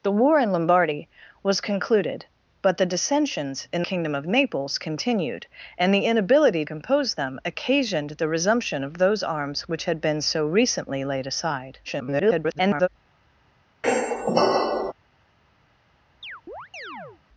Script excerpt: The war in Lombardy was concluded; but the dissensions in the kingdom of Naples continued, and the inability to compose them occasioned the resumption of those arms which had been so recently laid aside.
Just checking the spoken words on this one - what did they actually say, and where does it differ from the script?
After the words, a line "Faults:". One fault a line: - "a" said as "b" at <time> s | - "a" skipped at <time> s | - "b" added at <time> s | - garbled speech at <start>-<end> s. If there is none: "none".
The war in Lombardy was concluded; but the dissensions in kingdom of Naples continued, and the inability compose them occasioned the resumption of those arms which had been so recently laid aside. [garbled]
Faults:
- "the" skipped at 3.8 s
- "to" skipped at 6.6 s
- garbled speech at 11.8-12.9 s